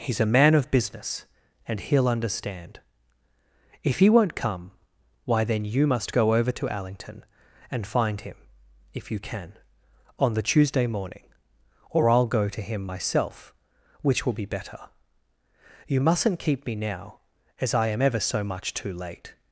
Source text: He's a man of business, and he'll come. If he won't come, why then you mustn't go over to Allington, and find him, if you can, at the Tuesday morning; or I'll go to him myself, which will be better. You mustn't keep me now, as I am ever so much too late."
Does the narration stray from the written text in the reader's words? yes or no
yes